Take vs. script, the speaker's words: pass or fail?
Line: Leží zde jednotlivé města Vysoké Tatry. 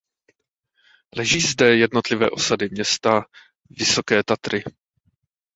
fail